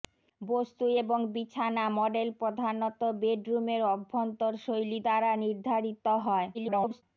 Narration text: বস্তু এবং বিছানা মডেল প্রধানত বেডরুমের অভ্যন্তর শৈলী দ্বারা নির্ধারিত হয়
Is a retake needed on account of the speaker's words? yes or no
yes